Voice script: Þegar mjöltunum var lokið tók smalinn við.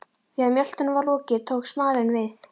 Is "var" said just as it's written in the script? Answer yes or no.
yes